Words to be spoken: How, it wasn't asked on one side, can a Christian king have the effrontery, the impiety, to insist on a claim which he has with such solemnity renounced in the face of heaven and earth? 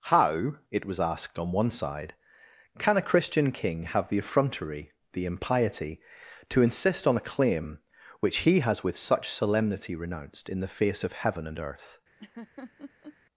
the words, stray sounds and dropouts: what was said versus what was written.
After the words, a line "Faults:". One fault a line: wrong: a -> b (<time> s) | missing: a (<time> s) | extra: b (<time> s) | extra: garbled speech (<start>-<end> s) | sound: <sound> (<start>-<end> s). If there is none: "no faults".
How, it was asked on one side, can a Christian king have the effrontery, the impiety, to insist on a claim which he has with such solemnity renounced in the face of heaven and earth?
Faults:
wrong: wasn't -> was (0.8 s)
sound: laugh (12.2-13.2 s)